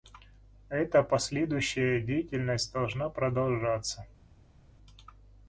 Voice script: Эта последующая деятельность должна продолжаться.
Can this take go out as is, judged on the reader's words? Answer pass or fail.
pass